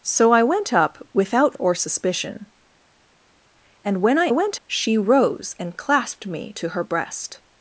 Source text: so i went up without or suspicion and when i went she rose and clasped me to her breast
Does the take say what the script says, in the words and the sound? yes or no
yes